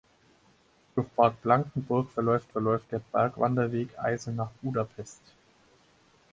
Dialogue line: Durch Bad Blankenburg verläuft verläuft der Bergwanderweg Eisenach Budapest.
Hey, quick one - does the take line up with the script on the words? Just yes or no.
yes